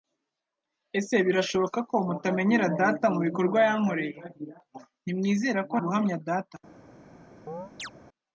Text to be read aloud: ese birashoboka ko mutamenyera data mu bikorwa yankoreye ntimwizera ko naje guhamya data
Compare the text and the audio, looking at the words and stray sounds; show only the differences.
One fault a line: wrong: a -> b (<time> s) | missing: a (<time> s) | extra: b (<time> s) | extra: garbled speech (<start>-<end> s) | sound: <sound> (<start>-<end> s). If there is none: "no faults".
missing: naje (5.8 s)
sound: chirp (7.5-7.9 s)